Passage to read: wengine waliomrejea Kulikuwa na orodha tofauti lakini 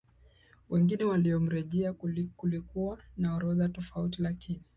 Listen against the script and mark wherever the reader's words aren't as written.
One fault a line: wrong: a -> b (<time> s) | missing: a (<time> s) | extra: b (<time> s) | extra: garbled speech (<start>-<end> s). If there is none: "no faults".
no faults